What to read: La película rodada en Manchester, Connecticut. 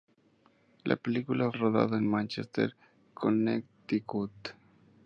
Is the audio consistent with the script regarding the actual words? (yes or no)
yes